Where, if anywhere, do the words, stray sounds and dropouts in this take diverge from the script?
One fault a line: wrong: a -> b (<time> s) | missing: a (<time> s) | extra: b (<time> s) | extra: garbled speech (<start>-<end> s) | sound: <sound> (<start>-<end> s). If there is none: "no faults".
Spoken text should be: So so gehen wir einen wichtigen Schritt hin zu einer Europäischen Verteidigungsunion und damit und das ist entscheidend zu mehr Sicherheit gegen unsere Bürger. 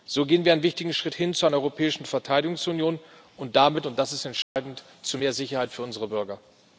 missing: so (0.2 s)
sound: dropout (4.4-4.6 s)
wrong: gegen -> für (5.7 s)